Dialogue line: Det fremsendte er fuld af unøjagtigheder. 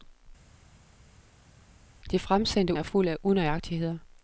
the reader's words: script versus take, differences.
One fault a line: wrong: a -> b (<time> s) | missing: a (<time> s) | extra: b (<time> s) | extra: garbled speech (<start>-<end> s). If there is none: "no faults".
no faults